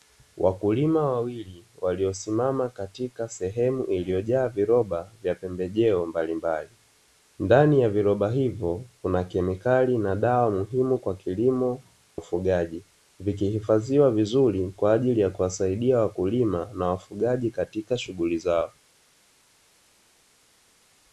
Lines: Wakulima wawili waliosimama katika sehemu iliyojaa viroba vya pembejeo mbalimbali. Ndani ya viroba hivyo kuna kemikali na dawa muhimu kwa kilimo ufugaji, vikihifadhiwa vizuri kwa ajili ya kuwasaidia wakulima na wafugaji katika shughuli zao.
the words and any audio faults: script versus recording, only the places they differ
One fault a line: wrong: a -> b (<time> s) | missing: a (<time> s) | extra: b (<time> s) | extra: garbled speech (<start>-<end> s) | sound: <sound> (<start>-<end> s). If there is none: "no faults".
no faults